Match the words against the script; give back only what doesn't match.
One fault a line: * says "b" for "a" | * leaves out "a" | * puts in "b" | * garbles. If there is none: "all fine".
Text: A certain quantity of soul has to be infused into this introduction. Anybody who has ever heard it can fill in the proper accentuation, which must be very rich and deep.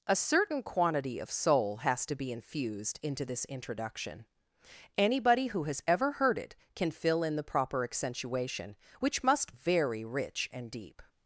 * leaves out "be"